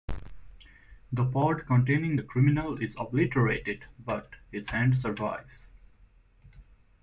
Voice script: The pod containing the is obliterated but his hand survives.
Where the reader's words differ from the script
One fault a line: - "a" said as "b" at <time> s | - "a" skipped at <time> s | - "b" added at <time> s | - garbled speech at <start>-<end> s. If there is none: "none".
- "criminal" added at 2.2 s